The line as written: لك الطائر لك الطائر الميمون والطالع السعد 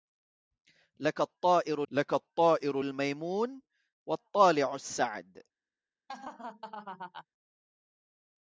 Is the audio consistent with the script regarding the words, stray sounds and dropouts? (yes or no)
no